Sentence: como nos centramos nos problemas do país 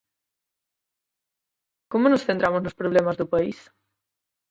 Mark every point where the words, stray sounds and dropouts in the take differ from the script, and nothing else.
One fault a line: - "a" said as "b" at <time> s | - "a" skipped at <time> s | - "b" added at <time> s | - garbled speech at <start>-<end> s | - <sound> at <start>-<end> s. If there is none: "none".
none